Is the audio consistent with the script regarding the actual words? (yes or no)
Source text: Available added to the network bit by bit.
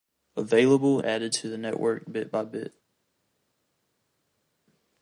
yes